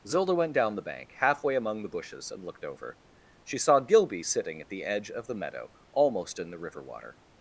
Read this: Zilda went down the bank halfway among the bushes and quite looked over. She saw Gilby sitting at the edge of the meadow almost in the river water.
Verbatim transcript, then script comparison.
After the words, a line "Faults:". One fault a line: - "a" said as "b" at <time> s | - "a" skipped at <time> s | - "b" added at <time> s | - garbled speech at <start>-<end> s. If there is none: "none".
Zilda went down the bank halfway among the bushes and looked over. She saw Gilby sitting at the edge of the meadow almost in the river water.
Faults:
- "quite" skipped at 2.4 s